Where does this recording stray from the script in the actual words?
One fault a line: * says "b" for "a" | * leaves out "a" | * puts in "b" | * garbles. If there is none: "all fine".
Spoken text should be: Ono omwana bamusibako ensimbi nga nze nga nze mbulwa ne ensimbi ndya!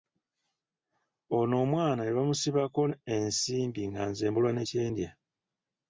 * puts in "ne"
* leaves out "nga nze"
* says "kye" for "ensimbi"